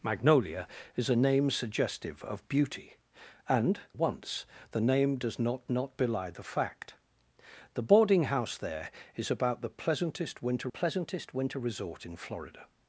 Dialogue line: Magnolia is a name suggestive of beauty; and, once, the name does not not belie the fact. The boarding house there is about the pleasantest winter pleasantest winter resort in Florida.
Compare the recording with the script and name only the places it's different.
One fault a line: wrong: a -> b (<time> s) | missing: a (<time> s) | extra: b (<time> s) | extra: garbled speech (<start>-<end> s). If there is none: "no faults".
no faults